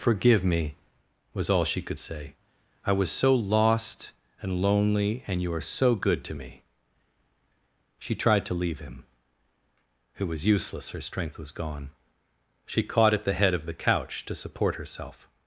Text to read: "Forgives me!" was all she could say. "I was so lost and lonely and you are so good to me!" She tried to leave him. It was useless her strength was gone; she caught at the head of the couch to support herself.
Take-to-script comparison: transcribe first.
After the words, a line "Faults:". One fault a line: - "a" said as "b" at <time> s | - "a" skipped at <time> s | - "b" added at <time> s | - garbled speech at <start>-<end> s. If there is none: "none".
"Forgive me!" was all she could say. "I was so lost and lonely and you are so good to me!" She tried to leave him. It was useless her strength was gone; she caught at the head of the couch to support herself.
Faults:
- "Forgives" said as "Forgive" at 0.0 s